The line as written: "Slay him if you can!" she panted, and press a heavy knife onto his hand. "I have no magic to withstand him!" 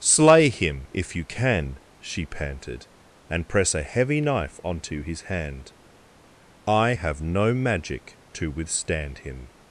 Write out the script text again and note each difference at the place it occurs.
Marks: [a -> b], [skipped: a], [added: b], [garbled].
"Slay him if you can!" she panted, and press a heavy knife onto his hand. "I have no magic to withstand him!"